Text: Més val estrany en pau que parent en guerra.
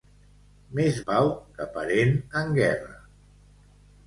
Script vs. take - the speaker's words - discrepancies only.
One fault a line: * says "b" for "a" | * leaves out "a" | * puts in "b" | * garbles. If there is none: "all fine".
* leaves out "val estrany en"